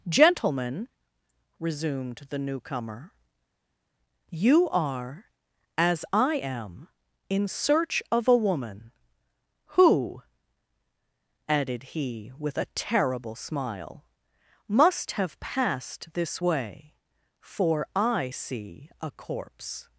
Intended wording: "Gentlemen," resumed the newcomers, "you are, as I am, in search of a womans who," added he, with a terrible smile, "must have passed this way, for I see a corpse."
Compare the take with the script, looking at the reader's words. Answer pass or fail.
fail